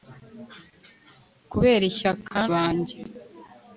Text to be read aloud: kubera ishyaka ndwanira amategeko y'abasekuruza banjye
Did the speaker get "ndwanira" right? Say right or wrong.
wrong